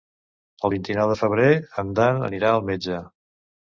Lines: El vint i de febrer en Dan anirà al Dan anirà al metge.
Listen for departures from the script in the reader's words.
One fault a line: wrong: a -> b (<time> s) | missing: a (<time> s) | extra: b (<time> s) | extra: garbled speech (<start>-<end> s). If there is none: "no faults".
extra: nou (1.0 s)
missing: Dan anirà al (2.7 s)